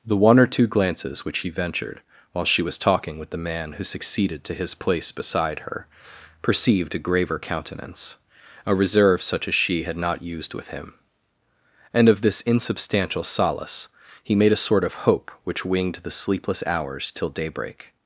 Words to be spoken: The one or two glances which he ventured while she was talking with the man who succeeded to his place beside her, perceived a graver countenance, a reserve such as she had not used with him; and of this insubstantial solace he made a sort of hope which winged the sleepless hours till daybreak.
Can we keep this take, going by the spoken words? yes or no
yes